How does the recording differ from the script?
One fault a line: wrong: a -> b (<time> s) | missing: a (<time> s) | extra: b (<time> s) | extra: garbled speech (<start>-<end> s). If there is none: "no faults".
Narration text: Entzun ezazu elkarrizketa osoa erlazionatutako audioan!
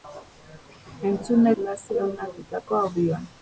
missing: ezazu elkarrizketa osoa (1.5 s)